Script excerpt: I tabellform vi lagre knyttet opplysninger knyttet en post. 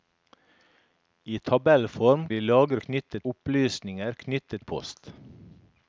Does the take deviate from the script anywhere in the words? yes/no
no